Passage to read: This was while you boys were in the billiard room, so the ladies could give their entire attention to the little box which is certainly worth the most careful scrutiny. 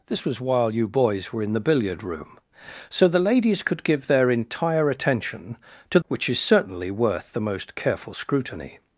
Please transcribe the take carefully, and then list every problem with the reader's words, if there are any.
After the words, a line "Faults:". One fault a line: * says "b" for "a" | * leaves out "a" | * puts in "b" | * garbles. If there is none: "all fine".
This was while you boys were in the billiard room, so the ladies could give their entire attention to which is certainly worth the most careful scrutiny.
Faults:
* leaves out "the little box"